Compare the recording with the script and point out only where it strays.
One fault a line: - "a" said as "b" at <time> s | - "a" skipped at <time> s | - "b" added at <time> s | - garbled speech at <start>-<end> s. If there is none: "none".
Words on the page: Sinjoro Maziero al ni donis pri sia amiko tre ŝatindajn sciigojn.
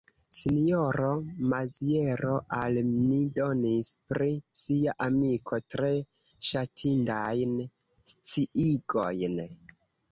none